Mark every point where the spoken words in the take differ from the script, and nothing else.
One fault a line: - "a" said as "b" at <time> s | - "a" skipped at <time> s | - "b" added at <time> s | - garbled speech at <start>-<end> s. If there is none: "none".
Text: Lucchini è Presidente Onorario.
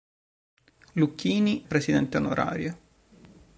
- "è" skipped at 1.6 s